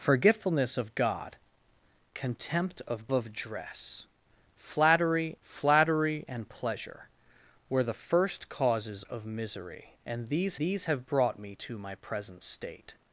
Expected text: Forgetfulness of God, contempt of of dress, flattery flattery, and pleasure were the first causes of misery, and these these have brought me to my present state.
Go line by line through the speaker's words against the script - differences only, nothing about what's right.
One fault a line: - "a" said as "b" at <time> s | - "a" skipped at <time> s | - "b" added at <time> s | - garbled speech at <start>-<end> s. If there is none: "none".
none